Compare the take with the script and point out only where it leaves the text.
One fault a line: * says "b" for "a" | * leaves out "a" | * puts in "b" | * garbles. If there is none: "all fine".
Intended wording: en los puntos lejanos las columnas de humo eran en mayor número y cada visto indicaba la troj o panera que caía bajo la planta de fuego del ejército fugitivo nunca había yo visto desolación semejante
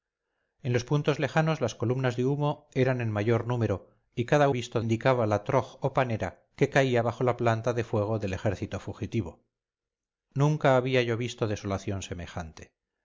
all fine